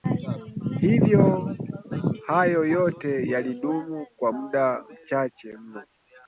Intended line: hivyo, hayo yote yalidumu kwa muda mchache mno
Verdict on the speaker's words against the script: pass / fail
pass